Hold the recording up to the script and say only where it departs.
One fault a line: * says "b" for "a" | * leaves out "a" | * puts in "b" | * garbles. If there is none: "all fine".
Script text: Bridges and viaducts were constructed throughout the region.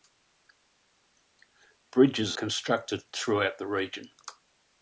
* leaves out "and viaducts were"